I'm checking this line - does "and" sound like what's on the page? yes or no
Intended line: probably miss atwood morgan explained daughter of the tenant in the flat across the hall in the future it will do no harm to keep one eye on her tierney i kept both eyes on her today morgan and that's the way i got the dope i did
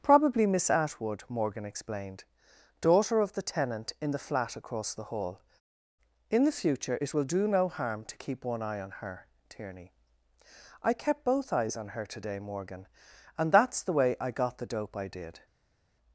yes